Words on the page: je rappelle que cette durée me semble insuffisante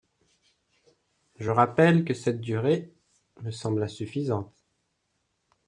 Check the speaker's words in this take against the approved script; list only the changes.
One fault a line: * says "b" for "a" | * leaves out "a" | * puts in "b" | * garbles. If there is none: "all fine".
all fine